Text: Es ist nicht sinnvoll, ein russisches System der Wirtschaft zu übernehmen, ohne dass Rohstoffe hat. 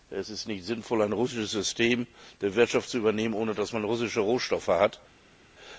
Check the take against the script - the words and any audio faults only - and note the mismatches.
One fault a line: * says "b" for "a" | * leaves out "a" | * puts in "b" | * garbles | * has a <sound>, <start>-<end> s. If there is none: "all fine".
* puts in "man russische"